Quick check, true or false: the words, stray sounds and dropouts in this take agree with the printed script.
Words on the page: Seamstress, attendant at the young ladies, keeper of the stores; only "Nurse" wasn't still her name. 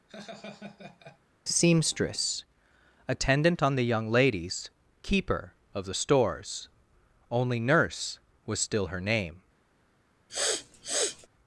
false